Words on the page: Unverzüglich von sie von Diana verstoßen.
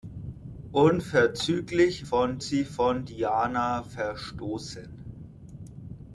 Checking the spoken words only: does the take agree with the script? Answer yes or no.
yes